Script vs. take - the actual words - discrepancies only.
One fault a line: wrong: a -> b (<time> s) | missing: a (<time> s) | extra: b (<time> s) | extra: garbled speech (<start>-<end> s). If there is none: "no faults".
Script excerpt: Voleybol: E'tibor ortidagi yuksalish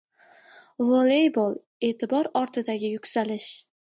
no faults